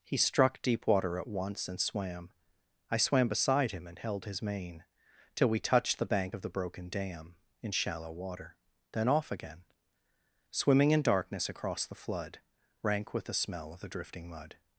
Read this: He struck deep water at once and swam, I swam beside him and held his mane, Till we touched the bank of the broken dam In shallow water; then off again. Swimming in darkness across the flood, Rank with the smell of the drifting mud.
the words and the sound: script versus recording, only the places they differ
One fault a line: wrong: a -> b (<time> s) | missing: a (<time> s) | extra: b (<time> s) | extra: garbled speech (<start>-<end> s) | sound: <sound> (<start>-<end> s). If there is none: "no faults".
no faults